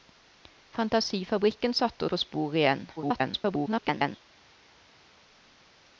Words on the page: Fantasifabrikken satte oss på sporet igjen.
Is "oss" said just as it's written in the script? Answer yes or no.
no